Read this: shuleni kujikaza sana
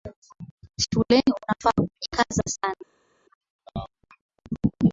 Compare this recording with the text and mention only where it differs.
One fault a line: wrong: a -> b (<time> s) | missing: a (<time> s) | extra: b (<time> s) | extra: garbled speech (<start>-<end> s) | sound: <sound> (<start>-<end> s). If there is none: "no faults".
extra: unafaa (1.4 s)